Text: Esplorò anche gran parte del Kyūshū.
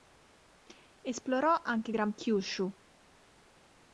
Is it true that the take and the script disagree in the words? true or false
true